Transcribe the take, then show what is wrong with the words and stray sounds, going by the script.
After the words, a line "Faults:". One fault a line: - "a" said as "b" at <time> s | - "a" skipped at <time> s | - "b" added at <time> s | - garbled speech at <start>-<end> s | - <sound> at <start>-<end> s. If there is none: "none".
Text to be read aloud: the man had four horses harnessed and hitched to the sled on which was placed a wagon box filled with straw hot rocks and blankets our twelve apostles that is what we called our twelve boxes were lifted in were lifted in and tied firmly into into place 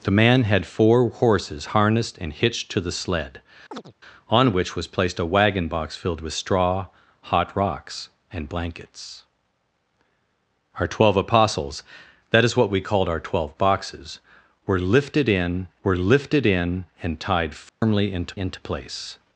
the man had four horses harnessed and hitched to the sled on which was placed a wagon box filled with straw hot rocks and blankets our twelve apostles that is what we called our twelve boxes were lifted in were lifted in and tied firmly into into place
Faults:
- chirp at 3.7-3.9 s
- dropout at 17.7-17.8 s